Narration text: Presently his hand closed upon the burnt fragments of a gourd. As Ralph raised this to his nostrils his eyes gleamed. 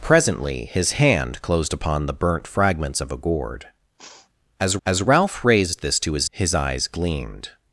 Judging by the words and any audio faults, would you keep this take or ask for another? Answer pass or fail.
fail